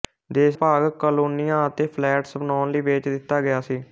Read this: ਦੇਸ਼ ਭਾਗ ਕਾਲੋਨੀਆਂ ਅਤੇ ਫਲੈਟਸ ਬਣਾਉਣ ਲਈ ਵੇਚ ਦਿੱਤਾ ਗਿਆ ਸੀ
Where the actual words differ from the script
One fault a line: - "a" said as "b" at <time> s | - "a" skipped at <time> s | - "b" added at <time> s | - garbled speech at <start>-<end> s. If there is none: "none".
none